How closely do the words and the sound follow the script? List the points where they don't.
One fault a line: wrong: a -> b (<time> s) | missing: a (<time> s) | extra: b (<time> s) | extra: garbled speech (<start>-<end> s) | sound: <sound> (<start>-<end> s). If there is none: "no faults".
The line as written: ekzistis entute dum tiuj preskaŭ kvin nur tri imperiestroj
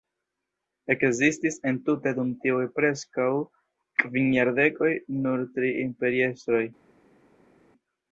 extra: jardekoj (4.4 s)